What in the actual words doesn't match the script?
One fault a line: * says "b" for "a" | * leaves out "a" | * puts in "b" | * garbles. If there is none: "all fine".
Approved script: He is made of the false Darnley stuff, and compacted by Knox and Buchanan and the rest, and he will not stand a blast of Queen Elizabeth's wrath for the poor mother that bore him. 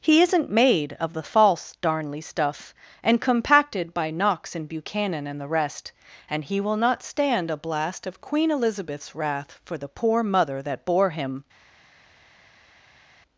* says "isn't" for "is"